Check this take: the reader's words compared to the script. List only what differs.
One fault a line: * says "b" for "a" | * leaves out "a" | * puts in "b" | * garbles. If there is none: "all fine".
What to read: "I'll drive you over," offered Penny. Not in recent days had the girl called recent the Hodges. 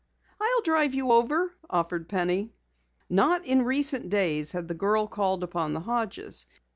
* says "upon" for "recent"